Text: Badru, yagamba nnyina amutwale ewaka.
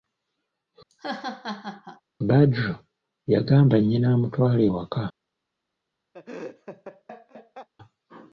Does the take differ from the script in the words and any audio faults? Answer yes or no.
yes